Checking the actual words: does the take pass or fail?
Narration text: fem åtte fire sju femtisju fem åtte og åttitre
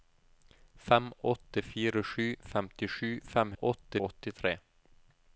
pass